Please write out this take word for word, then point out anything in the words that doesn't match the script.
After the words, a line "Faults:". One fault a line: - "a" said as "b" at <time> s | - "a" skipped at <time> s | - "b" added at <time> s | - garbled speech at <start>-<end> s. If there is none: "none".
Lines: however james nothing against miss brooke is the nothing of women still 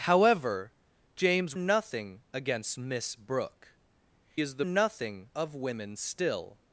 however james nothing against miss brooke is the nothing of women still
Faults:
none